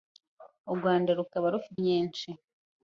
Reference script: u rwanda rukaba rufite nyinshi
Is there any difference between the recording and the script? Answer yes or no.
no